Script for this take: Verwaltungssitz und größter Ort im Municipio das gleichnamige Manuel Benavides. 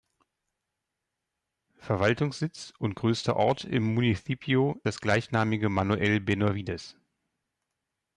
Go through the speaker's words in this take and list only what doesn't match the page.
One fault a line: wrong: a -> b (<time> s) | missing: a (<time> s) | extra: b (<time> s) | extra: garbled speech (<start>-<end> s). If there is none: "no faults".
no faults